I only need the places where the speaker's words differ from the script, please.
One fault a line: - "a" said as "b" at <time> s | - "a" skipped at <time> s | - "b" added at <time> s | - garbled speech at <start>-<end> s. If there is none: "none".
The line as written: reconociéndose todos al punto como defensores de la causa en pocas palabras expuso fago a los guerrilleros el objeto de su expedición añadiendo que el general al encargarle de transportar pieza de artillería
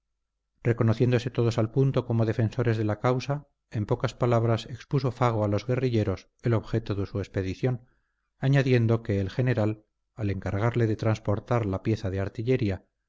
- "la" added at 11.7 s